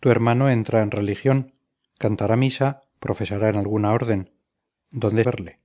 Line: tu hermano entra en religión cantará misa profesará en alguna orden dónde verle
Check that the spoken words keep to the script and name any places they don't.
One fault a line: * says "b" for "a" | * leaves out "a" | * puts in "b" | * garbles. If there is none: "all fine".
all fine